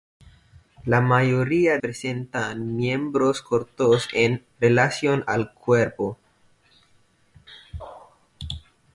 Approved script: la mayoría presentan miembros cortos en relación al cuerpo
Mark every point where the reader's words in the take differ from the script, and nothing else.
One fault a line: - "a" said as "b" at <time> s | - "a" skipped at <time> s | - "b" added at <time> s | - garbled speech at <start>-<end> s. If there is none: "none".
none